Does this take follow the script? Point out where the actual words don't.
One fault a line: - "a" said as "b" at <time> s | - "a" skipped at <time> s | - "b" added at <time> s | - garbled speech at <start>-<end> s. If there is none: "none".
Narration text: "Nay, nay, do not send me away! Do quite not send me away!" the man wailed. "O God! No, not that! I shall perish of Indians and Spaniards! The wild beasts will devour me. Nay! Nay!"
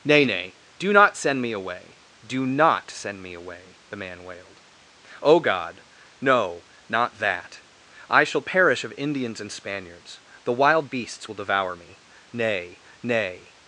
- "quite" skipped at 2.5 s